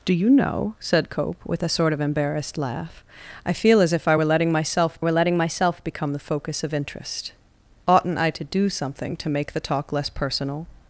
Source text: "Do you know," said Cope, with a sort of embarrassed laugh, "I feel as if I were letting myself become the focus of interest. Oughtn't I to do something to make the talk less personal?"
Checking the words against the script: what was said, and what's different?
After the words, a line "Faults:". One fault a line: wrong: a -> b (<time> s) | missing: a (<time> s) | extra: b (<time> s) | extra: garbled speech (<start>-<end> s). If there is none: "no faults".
"Do you know," said Cope, with a sort of embarrassed laugh, "I feel as if I were letting myself were letting myself become the focus of interest. Oughtn't I to do something to make the talk less personal?"
Faults:
extra: were letting myself (5.0 s)